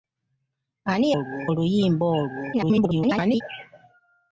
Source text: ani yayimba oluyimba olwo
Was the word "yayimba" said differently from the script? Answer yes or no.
yes